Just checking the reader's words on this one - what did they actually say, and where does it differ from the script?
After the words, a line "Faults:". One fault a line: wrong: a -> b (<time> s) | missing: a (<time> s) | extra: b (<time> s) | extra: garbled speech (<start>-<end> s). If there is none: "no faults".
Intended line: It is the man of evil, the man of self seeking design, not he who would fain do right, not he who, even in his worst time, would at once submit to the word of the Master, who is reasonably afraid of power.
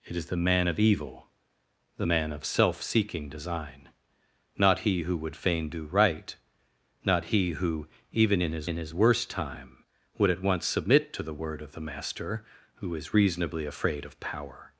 It is the man of evil, the man of self seeking design, not he who would fain do right, not he who, even in his in his worst time, would at once submit to the word of the Master, who is reasonably afraid of power.
Faults:
extra: in his (8.6 s)